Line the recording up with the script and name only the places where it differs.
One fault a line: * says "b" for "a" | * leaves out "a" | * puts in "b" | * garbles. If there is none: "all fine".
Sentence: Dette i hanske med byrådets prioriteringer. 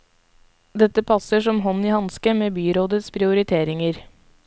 * puts in "passer som hånd"